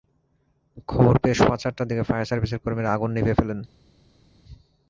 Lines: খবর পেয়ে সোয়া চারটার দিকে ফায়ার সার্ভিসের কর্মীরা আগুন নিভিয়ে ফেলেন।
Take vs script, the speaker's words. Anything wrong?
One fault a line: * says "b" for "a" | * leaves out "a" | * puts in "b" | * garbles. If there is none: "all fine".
all fine